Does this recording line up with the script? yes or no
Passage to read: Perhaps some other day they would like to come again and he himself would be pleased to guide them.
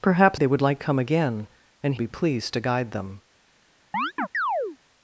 no